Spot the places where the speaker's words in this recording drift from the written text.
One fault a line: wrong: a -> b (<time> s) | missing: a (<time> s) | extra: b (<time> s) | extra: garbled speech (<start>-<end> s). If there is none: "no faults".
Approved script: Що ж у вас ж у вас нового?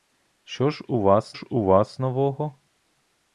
no faults